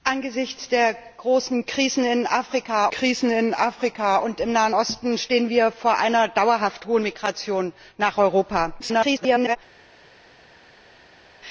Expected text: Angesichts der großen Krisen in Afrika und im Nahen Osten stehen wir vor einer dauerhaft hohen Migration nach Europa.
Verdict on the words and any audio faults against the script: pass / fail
fail